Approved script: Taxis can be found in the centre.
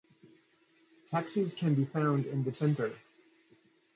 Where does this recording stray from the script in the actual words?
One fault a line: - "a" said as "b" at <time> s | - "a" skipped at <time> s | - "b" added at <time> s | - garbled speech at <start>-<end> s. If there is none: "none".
none